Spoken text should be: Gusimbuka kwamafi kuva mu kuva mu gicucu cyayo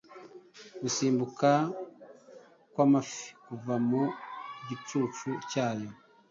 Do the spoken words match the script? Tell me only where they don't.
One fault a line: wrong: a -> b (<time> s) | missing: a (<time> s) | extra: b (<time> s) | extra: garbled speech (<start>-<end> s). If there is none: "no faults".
missing: kuva mu (4.0 s)